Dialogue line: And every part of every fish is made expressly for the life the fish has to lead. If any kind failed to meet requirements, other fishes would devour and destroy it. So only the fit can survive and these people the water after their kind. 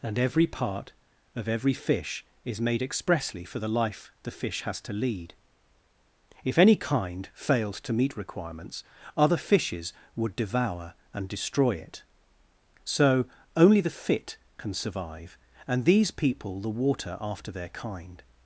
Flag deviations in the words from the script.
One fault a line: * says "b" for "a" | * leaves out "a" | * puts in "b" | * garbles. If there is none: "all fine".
all fine